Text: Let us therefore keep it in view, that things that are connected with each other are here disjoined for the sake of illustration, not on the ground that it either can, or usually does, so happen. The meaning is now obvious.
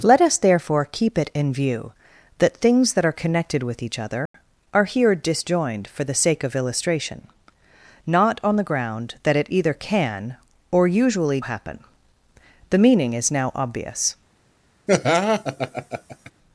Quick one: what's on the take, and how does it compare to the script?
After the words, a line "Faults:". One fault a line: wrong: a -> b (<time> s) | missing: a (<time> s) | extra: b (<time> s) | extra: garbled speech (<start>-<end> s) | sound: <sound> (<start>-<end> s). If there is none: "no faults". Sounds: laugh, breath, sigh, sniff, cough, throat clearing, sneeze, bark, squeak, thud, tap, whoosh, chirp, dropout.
Let us therefore keep it in view, that things that are connected with each other are here disjoined for the sake of illustration, not on the ground that it either can, or usually happen. The meaning is now obvious.
Faults:
sound: dropout (4.3-4.3 s)
missing: does so (11.4 s)
sound: laugh (14.9-16.3 s)